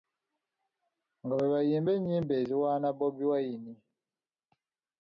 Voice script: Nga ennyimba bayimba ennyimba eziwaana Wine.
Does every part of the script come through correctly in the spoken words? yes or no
no